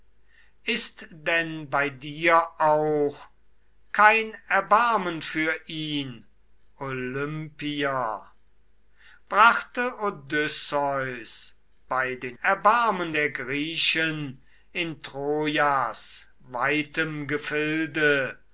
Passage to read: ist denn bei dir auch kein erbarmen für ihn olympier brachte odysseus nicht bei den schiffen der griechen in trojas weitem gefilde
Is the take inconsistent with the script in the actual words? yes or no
yes